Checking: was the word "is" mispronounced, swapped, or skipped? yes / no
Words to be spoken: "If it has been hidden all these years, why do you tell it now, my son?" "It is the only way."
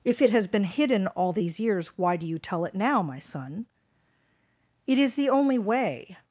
no